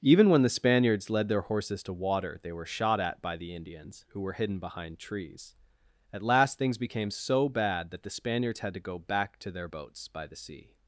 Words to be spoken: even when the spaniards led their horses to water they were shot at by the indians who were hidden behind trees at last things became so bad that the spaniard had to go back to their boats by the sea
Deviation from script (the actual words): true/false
true